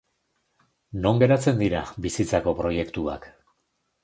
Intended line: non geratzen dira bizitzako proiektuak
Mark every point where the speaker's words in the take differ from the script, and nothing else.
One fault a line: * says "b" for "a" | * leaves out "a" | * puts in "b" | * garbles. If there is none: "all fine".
all fine